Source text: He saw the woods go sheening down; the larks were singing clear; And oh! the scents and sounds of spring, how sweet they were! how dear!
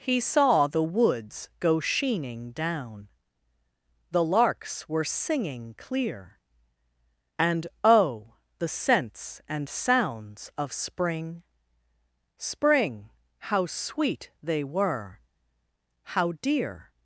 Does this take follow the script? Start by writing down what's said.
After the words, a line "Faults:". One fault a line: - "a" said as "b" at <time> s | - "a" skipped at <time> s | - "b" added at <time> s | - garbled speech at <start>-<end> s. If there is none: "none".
He saw the woods go sheening down; the larks were singing clear; And oh! the scents and sounds of spring spring, how sweet they were! how dear!
Faults:
- "spring" added at 12.3 s